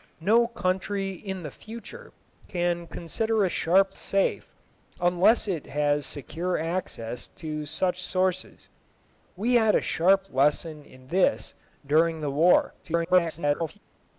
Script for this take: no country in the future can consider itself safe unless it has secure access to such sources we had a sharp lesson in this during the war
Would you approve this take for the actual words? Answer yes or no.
no